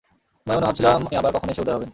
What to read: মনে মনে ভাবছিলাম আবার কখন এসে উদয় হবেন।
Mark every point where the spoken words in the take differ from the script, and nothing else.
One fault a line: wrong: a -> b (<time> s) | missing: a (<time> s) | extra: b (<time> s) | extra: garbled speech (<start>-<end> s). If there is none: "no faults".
no faults